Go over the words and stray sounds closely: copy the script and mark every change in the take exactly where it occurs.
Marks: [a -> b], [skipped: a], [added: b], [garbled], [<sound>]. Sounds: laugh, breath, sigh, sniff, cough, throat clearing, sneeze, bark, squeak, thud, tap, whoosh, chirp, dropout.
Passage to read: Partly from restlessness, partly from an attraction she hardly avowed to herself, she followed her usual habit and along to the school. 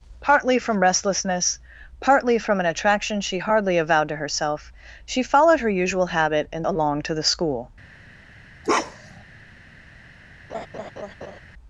Partly from restlessness, partly from an attraction she hardly avowed to herself, she followed her usual habit and along to the school. [bark] [laugh]